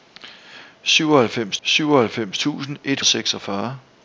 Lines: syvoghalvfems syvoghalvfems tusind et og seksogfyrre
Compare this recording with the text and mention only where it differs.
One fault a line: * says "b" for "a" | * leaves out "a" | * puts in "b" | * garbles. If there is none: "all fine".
all fine